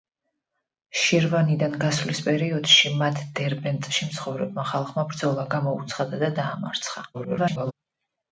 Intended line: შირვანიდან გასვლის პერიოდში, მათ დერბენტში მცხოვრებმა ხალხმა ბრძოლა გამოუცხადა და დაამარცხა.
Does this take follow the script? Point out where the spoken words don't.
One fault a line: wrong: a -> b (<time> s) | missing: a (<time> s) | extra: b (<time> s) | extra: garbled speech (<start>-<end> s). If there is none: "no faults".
extra: garbled speech (7.1-7.7 s)